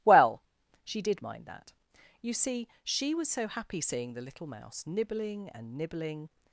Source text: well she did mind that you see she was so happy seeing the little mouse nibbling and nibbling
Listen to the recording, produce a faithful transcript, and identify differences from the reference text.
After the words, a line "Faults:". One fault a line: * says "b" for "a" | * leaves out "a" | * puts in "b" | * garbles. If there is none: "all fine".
well she did mind that you see she was so happy seeing the little mouse nibbling and nibbling
Faults:
all fine